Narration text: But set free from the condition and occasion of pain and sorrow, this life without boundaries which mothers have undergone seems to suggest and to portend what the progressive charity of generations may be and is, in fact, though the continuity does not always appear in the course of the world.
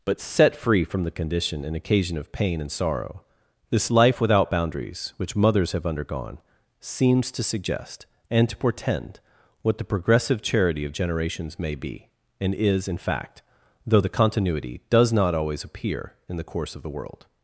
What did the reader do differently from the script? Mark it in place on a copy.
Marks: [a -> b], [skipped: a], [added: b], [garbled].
But set free from the condition and occasion of pain and sorrow, this life without boundaries which mothers have undergone seems to suggest and to portend what the progressive charity of generations may be and is, in fact, though the continuity does not always appear in the course of the world.